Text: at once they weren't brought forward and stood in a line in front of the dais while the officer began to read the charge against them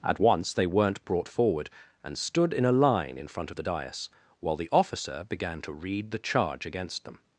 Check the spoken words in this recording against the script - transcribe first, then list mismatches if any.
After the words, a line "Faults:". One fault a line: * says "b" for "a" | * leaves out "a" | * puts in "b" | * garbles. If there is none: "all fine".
at once they weren't brought forward and stood in a line in front of the dais while the officer began to read the charge against them
Faults:
all fine